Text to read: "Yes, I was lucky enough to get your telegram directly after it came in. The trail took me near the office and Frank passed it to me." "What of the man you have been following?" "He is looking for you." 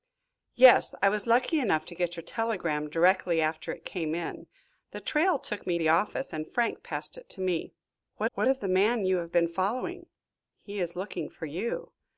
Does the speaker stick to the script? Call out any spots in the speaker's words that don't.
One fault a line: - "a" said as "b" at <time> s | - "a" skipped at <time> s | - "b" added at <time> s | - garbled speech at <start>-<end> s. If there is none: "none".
- "near" skipped at 5.8 s
- "what" added at 8.3 s